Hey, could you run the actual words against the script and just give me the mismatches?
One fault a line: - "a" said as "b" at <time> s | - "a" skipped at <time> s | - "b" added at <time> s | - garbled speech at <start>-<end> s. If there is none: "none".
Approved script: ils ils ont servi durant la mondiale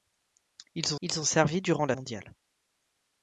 none